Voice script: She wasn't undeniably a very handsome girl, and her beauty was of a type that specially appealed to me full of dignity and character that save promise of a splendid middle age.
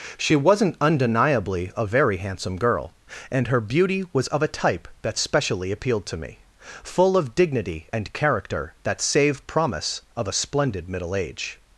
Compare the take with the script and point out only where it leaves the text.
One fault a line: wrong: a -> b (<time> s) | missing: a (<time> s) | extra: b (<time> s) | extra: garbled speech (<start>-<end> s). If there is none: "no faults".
no faults